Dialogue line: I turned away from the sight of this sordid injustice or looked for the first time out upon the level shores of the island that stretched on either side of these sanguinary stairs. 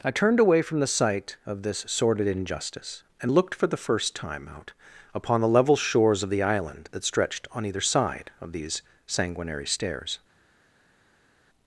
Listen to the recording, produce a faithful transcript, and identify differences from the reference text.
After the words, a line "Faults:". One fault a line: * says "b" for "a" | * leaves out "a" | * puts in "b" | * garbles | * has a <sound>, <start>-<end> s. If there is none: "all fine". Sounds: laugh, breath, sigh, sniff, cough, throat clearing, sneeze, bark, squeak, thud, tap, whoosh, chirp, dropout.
I turned away from the sight of this sordid injustice and looked for the first time out upon the level shores of the island that stretched on either side of these sanguinary stairs.
Faults:
* says "and" for "or"